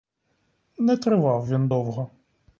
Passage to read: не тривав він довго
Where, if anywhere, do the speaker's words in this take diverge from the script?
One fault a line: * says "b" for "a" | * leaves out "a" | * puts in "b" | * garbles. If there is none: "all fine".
all fine